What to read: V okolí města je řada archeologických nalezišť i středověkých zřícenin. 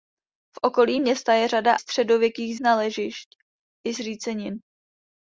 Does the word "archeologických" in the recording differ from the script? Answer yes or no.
yes